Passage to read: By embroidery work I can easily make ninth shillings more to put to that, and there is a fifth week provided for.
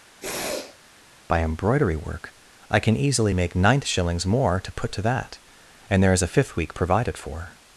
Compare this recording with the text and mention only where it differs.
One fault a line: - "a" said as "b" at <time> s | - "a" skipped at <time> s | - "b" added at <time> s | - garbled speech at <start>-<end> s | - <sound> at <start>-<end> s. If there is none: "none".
- sniff at 0.2-0.8 s